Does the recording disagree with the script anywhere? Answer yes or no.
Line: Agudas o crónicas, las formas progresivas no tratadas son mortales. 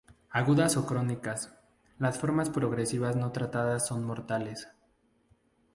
no